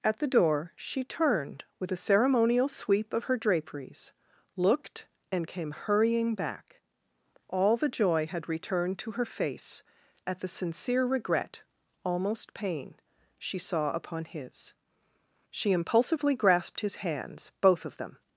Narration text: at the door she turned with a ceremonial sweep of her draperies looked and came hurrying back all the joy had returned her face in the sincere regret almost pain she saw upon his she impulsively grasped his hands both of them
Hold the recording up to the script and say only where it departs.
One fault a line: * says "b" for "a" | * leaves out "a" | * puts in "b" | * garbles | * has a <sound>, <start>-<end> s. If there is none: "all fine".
* puts in "to"
* says "at" for "in"